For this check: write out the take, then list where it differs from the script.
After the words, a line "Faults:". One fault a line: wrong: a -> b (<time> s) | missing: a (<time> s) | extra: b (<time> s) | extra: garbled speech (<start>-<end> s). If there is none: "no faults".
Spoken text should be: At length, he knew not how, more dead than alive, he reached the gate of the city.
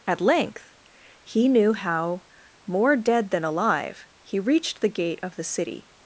At length, he knew how, more dead than alive, he reached the gate of the city.
Faults:
missing: not (1.7 s)